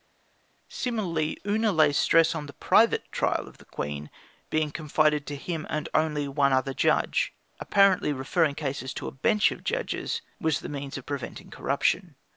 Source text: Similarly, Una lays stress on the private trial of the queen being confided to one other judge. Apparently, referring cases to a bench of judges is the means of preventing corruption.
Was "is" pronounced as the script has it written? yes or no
no